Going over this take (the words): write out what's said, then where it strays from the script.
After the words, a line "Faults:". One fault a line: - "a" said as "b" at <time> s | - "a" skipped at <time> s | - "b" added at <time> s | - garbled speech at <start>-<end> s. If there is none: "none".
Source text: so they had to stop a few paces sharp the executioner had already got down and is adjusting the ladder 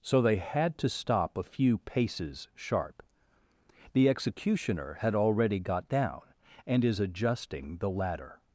so they had to stop a few paces sharp the executioner had already got down and is adjusting the ladder
Faults:
none